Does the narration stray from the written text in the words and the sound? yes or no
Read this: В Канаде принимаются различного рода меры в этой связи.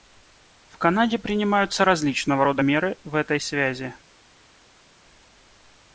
no